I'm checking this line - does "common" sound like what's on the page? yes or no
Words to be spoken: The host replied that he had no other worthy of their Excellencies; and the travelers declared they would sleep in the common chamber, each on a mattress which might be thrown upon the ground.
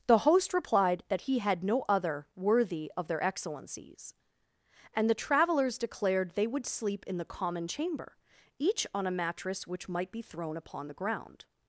yes